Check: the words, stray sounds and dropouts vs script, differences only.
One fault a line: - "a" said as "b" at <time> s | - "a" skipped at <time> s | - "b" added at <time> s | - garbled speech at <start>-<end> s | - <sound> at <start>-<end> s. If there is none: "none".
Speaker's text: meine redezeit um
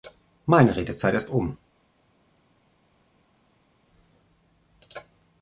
- "ist" added at 1.1 s